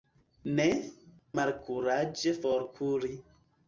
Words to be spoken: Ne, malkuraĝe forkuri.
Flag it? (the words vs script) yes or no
no